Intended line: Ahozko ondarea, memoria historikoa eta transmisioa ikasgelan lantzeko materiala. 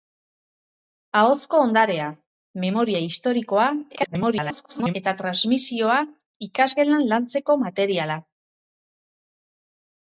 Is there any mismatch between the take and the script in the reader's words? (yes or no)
yes